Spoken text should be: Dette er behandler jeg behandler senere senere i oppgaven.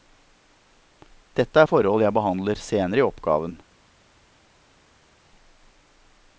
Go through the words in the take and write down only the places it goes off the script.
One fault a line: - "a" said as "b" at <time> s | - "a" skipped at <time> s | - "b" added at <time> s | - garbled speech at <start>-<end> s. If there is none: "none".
- "behandler" said as "forhold" at 1.7 s
- "senere" skipped at 3.0 s